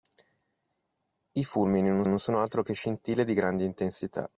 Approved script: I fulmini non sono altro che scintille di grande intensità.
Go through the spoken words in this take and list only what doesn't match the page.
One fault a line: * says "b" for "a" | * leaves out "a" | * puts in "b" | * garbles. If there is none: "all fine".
* puts in "non"